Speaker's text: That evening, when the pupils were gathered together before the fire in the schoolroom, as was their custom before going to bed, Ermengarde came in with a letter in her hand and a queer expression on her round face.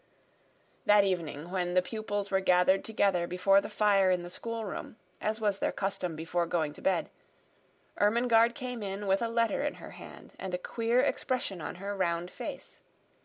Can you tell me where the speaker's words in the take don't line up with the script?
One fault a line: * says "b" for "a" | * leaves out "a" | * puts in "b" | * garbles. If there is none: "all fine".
all fine